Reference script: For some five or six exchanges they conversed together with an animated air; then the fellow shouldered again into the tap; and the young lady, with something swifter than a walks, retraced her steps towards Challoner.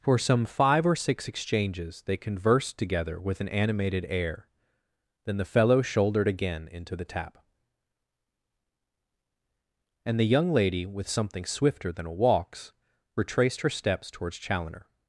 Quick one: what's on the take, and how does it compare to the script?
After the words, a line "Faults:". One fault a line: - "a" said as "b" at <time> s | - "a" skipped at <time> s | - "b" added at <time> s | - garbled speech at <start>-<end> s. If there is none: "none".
For some five or six exchanges they conversed together with an animated air; then the fellow shouldered again into the tap; and the young lady, with something swifter than a walks, retraced her steps towards Challoner.
Faults:
none